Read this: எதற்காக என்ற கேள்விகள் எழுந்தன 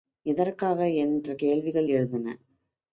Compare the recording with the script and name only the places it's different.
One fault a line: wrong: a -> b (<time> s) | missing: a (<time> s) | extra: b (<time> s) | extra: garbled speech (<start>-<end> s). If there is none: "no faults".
no faults